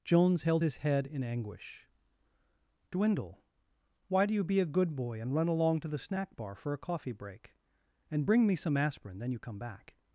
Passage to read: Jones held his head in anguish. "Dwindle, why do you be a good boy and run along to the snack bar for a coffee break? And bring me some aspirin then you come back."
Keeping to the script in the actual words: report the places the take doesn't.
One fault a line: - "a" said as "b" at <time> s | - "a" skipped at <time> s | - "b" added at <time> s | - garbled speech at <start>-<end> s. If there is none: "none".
none